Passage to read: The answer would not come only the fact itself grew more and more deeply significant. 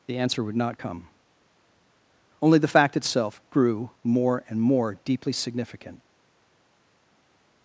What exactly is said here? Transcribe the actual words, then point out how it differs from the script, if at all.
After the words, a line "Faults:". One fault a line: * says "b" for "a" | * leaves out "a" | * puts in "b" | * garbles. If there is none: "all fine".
The answer would not come only the fact itself grew more and more deeply significant.
Faults:
all fine